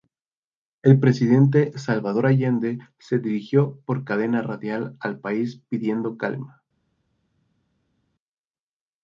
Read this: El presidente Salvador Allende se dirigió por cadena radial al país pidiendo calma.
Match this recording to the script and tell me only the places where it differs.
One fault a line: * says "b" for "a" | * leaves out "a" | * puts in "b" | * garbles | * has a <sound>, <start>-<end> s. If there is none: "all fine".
all fine